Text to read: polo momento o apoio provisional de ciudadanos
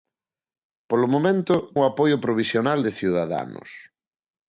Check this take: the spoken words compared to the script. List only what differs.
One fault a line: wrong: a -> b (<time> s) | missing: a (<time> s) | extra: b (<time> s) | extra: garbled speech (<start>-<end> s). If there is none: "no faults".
no faults